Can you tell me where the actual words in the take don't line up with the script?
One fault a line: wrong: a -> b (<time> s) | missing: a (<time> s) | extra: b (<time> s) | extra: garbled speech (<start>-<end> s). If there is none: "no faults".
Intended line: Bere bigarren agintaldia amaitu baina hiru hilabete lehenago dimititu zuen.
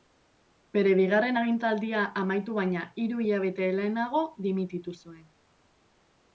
no faults